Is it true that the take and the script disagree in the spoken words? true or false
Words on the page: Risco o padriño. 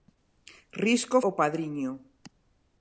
false